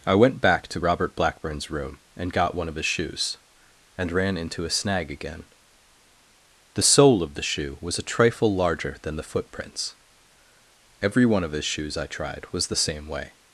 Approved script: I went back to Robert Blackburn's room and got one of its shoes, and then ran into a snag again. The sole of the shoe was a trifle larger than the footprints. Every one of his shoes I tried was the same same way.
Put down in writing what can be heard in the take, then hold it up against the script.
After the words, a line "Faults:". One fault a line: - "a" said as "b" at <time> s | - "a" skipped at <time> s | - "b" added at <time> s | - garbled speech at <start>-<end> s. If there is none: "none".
I went back to Robert Blackburn's room and got one of his shoes, and ran into a snag again. The sole of the shoe was a trifle larger than the footprints. Every one of his shoes I tried was the same way.
Faults:
- "its" said as "his" at 2.7 s
- "then" skipped at 4.1 s
- "same" skipped at 13.1 s